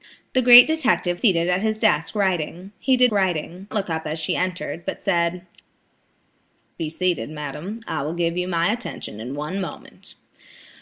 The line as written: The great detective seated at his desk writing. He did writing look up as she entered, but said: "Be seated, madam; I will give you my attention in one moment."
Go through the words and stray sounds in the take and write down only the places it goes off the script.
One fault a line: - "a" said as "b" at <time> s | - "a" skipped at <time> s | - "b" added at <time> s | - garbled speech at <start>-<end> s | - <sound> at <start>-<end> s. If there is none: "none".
none